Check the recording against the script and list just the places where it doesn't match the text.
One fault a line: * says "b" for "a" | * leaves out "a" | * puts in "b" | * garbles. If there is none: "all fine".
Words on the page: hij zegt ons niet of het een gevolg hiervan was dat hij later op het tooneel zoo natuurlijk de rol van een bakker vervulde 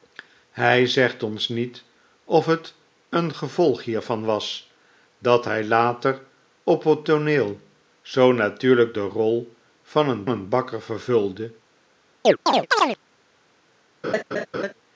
* puts in "een"